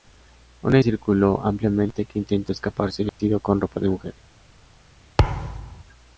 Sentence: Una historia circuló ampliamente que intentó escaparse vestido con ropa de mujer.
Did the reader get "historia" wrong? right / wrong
wrong